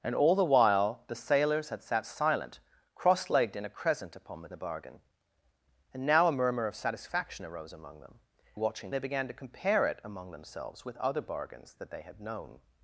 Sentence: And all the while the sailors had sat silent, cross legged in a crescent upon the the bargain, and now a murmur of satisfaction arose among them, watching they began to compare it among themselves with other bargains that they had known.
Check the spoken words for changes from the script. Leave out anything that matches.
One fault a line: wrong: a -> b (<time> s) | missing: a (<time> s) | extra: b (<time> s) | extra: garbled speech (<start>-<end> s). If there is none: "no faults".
no faults